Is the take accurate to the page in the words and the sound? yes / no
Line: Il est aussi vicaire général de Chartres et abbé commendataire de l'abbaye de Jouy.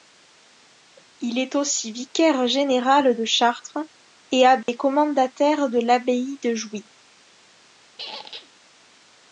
no